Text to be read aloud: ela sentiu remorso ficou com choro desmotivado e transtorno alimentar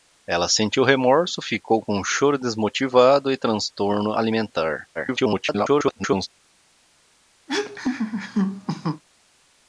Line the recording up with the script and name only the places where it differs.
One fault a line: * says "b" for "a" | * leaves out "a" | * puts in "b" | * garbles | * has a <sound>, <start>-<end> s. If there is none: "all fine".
* garbles
* has a laugh, 7.5-9.0 s